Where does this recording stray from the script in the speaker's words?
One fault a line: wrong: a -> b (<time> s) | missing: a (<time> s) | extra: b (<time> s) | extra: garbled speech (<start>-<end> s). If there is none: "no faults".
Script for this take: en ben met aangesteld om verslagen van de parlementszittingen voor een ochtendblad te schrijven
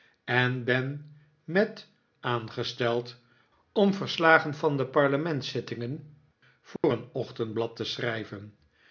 no faults